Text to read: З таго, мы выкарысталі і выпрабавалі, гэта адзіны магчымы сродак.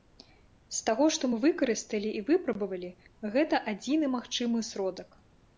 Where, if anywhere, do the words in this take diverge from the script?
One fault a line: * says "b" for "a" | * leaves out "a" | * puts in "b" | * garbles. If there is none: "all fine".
* puts in "што"